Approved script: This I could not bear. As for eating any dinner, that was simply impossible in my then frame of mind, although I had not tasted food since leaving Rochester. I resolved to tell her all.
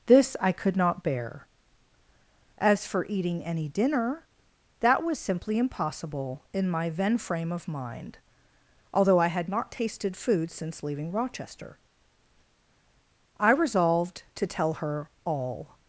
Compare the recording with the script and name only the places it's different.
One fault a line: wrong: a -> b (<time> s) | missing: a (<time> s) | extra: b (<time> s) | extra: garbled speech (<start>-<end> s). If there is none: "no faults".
no faults